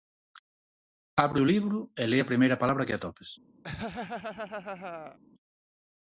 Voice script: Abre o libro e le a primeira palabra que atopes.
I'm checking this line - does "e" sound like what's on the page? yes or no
yes